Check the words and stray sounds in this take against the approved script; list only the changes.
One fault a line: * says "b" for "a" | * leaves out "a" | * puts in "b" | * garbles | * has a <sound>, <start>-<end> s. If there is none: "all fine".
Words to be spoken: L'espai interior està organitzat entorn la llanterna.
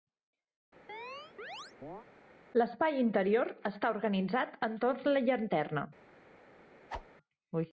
* has a chirp, 0.9-2.1 s
* has a whoosh, 6.9-7.1 s